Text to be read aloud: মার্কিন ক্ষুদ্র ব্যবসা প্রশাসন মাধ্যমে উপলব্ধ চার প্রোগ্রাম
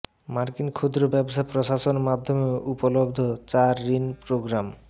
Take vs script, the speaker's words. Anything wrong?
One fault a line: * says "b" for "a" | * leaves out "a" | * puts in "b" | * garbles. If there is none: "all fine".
* puts in "ঋণ"